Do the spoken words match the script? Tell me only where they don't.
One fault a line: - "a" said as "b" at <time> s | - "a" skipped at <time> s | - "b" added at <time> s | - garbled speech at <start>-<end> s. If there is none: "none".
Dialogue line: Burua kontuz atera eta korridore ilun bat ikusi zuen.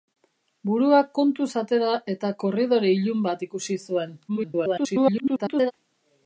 - garbled speech at 4.3-5.7 s